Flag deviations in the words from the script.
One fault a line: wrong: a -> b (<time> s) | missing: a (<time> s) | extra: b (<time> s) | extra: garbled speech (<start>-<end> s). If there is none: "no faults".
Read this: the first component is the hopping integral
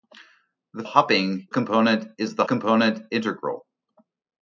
wrong: first -> hopping (0.8 s)
wrong: hopping -> component (2.5 s)